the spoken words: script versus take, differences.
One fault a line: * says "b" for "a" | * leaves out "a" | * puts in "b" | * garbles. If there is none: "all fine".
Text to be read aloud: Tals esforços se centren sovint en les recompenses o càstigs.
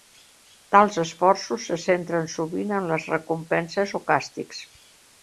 all fine